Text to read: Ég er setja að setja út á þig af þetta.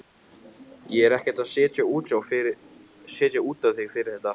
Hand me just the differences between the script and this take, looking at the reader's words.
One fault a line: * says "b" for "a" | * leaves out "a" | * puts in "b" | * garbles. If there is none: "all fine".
* says "ekkert" for "setja"
* says "fyrir" for "af"